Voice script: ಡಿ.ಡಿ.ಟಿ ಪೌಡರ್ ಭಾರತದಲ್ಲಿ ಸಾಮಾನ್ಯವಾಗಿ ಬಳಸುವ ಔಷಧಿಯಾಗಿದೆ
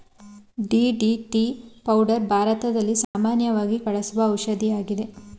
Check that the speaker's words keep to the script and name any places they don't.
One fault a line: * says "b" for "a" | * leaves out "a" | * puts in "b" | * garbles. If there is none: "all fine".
all fine